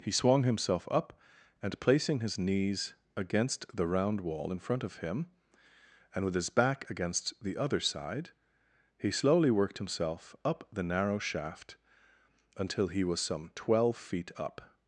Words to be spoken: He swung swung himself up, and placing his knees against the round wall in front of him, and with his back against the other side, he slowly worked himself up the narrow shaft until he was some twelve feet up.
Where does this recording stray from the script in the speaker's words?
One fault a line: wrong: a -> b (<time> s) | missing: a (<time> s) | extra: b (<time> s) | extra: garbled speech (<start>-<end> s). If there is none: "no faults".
missing: swung (0.4 s)